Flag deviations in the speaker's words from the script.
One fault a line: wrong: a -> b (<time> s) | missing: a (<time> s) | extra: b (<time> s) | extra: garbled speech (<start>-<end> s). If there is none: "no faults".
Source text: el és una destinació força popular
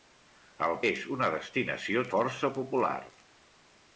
no faults